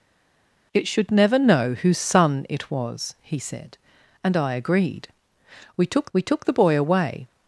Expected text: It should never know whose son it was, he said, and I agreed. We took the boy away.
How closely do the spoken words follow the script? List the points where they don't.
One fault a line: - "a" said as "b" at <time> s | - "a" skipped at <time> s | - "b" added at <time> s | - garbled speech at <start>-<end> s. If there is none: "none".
- "we took" added at 6.1 s